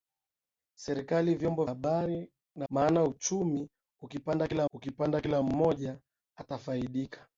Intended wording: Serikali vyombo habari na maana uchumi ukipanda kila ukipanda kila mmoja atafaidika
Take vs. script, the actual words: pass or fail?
pass